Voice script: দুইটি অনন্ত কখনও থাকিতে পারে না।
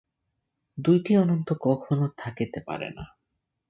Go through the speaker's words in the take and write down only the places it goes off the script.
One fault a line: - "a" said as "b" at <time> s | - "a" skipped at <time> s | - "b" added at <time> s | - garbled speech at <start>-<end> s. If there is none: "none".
none